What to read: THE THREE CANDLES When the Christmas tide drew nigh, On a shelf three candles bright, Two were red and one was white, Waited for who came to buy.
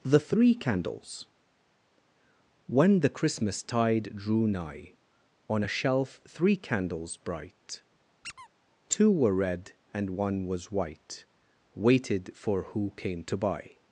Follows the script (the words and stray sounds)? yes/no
no